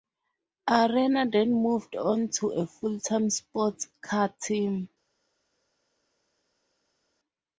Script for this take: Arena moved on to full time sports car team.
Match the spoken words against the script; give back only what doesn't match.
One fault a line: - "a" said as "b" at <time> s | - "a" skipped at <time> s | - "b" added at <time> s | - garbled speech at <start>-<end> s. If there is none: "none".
- "then" added at 1.3 s
- "a" added at 2.5 s